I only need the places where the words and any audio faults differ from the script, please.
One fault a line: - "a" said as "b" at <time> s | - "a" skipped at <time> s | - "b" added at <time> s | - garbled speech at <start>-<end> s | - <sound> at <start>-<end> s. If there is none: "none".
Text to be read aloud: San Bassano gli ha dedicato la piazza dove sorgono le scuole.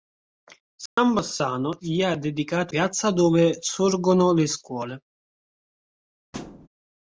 - dropout at 0.9-1.0 s
- "la" skipped at 2.7 s
- thud at 6.3-6.7 s